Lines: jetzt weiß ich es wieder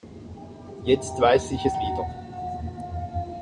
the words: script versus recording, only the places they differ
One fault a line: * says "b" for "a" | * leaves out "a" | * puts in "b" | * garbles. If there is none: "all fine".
all fine